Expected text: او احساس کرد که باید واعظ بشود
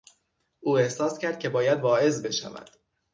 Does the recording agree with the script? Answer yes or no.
yes